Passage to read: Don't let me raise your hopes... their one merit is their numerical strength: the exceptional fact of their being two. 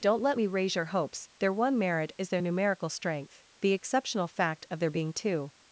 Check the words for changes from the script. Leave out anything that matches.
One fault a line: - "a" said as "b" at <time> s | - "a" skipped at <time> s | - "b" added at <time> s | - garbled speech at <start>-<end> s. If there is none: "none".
none